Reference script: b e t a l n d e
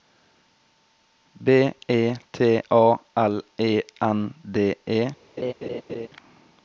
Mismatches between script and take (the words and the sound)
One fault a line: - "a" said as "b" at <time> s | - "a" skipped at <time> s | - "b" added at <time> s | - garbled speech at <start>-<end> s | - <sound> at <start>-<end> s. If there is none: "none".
- "e" added at 3.6 s
- laugh at 5.4-6.1 s